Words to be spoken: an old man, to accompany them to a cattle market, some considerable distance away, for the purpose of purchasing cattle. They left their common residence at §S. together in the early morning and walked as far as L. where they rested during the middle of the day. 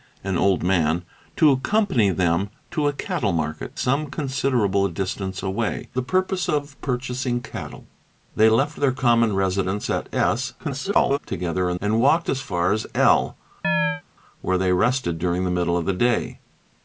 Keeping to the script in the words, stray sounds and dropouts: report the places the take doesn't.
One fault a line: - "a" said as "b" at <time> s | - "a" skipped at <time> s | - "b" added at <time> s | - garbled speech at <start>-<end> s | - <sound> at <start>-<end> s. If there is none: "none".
- "for" skipped at 5.9 s
- garbled speech at 10.6-11.2 s
- "the early morning" skipped at 11.8 s
- chirp at 13.6-14.0 s